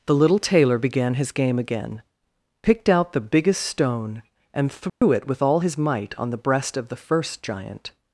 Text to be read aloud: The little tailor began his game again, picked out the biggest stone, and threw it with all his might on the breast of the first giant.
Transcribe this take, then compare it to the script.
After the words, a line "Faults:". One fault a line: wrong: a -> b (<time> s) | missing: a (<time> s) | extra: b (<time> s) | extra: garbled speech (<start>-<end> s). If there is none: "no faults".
The little tailor began his game again, picked out the biggest stone, and threw it with all his might on the breast of the first giant.
Faults:
no faults